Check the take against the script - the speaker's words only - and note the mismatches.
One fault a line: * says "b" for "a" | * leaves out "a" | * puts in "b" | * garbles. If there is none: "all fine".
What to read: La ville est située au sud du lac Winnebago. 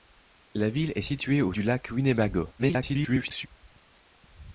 * leaves out "sud"
* garbles